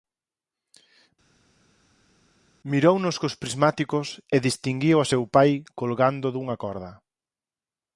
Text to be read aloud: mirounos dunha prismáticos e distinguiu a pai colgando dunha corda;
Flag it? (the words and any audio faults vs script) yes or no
yes